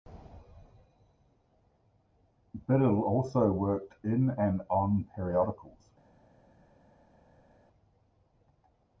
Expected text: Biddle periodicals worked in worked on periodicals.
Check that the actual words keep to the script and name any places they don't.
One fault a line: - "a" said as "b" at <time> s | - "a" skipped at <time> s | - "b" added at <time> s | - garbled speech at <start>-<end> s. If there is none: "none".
- "periodicals" said as "also" at 3.0 s
- "worked" said as "and" at 4.3 s